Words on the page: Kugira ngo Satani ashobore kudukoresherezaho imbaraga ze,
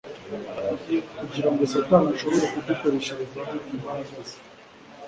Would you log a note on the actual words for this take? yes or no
no